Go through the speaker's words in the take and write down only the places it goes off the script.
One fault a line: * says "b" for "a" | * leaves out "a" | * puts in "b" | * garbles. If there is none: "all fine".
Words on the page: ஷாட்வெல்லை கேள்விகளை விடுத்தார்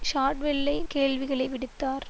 all fine